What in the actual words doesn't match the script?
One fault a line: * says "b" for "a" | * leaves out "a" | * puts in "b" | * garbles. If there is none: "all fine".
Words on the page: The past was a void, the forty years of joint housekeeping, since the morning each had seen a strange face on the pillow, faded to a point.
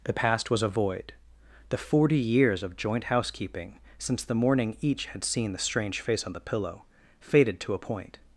* says "the" for "a"